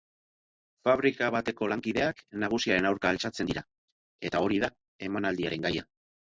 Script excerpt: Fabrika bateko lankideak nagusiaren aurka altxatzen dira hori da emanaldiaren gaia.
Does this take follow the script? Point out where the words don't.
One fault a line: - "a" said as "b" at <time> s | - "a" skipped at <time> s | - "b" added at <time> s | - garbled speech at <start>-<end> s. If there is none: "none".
- "eta" added at 4.3 s